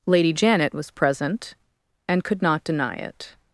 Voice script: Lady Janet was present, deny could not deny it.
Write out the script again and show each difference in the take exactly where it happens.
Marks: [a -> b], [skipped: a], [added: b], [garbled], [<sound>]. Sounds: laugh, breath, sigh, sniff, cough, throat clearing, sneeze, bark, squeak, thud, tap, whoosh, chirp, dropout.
Lady Janet was present, [deny -> and] could not deny it.